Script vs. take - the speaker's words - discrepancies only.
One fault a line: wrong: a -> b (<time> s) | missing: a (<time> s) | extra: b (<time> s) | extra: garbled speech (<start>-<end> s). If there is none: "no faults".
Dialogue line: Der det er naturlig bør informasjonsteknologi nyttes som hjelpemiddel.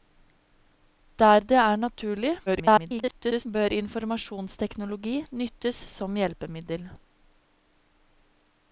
extra: garbled speech (2.5-3.5 s)